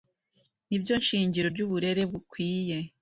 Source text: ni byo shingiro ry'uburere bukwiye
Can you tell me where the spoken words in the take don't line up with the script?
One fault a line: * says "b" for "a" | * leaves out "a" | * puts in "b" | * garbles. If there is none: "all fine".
all fine